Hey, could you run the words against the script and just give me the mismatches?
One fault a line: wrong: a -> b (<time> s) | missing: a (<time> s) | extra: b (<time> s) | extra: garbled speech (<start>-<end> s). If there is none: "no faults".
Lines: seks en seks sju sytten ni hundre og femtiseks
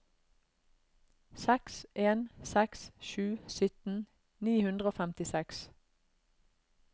no faults